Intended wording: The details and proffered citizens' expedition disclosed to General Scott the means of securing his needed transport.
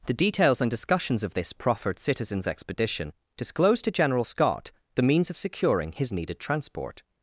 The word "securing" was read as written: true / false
true